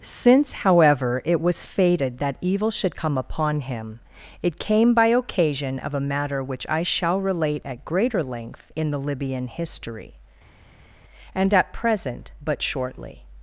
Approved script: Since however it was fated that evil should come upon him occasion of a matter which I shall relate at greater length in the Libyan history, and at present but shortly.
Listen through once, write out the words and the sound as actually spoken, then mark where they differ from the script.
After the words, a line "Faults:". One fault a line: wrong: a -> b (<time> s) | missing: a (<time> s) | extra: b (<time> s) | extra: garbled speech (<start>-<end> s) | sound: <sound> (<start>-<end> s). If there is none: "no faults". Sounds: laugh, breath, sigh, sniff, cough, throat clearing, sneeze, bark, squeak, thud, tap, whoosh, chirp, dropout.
Since however it was fated that evil should come upon him it came by occasion of a matter which I shall relate at greater length in the Libyan history, and at present but shortly.
Faults:
extra: it came by (4.4 s)